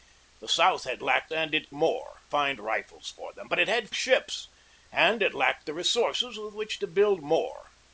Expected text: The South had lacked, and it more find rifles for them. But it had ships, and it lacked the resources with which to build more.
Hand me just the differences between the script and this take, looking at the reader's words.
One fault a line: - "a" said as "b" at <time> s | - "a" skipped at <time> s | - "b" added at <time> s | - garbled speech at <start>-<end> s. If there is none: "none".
none